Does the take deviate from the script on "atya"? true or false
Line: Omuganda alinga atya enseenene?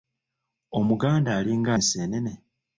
true